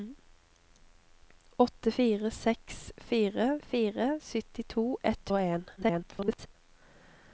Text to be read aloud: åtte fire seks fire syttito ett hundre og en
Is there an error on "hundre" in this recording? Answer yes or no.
yes